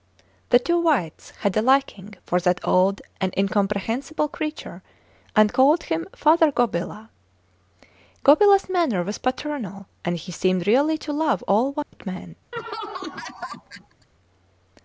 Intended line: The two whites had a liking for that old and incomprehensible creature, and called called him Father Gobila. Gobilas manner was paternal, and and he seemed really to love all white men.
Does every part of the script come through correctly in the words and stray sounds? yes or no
no